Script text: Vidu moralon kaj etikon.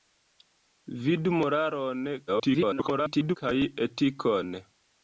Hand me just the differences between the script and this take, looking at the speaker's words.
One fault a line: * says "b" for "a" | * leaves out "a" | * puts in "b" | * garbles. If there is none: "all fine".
* garbles